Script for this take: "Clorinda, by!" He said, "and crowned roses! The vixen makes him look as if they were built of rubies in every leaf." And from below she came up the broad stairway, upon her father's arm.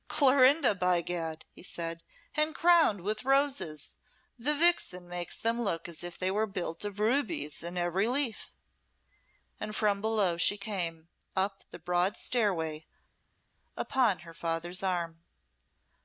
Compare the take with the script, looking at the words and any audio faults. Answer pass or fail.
fail